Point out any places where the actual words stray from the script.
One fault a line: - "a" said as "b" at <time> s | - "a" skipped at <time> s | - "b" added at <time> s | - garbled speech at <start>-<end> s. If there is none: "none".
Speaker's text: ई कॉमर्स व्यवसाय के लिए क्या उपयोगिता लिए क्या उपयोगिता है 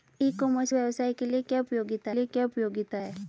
none